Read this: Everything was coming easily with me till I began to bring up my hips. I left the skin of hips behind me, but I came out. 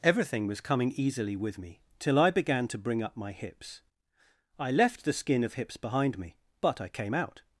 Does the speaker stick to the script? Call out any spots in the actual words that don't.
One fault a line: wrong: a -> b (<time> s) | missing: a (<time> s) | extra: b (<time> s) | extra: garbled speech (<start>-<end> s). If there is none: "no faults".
no faults